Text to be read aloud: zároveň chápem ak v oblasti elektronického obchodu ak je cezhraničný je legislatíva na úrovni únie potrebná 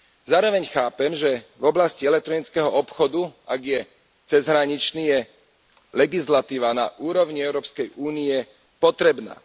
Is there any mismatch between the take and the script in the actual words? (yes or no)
yes